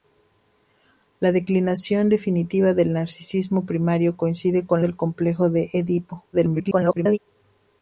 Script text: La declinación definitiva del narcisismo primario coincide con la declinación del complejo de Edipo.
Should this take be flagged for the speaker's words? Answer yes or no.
yes